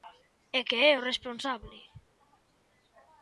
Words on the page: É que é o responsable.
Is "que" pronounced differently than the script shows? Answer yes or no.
no